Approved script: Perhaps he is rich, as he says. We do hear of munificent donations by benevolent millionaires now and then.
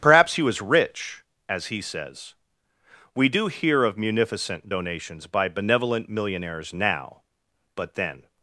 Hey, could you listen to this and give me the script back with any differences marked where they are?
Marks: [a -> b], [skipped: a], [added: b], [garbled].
Perhaps he [is -> was] rich, as he says. We do hear of munificent donations by benevolent millionaires now [and -> but] then.